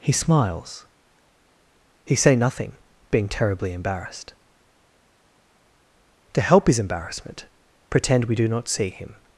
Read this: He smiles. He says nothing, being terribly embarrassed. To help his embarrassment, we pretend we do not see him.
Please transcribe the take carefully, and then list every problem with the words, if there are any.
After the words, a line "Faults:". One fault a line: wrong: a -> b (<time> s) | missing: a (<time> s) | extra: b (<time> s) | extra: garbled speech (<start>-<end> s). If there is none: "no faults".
He smiles. He say nothing, being terribly embarrassed. To help his embarrassment, pretend we do not see him.
Faults:
wrong: says -> say (2.1 s)
missing: we (7.5 s)